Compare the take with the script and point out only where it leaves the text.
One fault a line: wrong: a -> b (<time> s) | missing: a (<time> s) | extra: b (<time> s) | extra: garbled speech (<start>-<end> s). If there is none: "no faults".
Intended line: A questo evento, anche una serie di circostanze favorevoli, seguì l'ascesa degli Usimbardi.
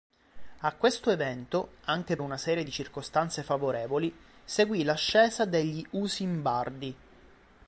no faults